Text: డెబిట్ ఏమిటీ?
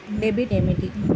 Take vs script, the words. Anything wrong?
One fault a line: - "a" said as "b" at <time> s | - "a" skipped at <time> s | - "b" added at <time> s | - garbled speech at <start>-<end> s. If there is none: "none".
none